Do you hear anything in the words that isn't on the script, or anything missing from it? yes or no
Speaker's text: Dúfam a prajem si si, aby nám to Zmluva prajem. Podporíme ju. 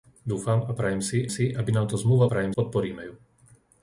no